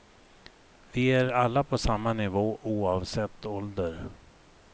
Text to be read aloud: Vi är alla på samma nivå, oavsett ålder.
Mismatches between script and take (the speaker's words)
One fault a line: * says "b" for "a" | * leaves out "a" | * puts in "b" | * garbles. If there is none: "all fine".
all fine